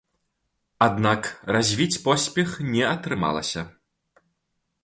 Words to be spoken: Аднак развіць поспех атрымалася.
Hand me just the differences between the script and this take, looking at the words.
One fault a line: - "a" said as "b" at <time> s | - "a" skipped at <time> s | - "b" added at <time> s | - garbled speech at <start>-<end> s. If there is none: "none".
- "не" added at 2.7 s